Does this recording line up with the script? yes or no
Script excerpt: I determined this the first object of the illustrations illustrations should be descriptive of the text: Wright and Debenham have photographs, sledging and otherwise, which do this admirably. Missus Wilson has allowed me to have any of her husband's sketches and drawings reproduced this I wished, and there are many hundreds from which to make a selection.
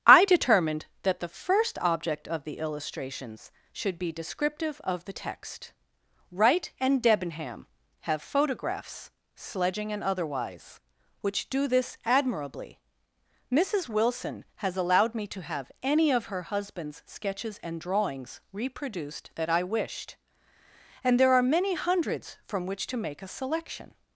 no